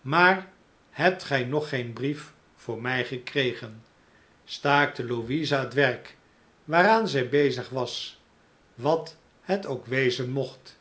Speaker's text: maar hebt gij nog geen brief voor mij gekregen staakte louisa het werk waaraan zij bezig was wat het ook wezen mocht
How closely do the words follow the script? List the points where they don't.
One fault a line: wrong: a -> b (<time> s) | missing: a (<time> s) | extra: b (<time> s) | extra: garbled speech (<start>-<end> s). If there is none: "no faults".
no faults